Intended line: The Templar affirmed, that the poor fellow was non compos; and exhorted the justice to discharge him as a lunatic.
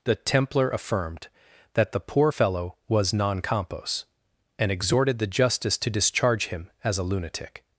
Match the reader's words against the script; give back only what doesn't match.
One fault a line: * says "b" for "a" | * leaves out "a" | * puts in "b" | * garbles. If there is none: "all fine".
all fine